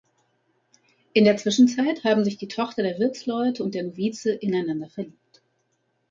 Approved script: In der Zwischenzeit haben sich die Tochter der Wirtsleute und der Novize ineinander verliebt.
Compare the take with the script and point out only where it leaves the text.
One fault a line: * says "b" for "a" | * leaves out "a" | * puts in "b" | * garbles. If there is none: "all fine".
all fine